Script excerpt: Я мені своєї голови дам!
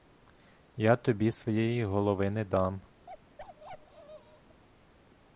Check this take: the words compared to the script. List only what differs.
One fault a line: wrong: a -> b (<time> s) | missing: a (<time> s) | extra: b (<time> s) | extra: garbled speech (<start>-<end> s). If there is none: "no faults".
wrong: мені -> тобі (0.9 s)
extra: не (2.3 s)